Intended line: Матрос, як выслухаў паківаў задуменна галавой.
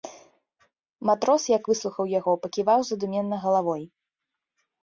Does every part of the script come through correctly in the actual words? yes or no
no